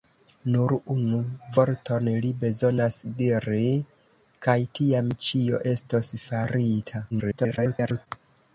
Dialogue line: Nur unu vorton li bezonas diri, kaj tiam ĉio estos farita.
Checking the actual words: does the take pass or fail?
fail